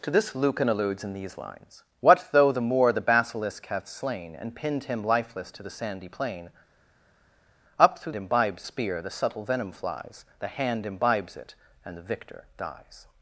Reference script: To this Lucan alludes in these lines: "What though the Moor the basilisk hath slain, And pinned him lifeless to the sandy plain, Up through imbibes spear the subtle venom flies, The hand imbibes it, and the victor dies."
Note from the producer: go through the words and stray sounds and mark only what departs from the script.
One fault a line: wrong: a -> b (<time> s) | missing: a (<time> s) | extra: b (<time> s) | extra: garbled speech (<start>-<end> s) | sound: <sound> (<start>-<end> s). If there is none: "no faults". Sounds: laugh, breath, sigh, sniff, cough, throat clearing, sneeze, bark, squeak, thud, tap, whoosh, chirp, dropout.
no faults